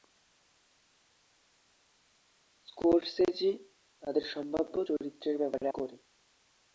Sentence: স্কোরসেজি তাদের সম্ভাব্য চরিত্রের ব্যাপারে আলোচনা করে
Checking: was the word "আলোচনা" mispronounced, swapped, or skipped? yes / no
yes